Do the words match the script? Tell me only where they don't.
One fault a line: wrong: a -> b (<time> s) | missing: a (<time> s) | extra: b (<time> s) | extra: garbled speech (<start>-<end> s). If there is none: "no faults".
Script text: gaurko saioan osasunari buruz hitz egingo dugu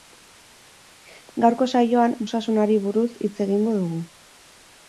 no faults